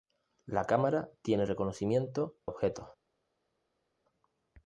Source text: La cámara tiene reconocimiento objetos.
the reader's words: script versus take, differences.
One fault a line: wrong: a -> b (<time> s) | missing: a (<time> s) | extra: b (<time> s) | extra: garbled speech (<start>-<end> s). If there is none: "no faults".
no faults